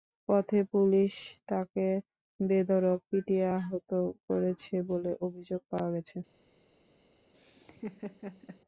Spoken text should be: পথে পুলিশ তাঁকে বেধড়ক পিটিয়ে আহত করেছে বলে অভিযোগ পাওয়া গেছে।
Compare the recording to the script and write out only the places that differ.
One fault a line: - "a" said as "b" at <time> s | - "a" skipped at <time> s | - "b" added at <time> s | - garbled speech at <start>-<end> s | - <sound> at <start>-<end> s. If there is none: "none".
- laugh at 7.3-8.6 s